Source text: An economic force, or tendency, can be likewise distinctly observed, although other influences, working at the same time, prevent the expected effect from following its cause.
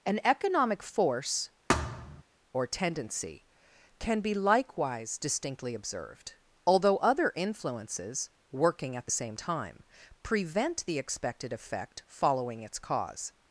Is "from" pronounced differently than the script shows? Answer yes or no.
yes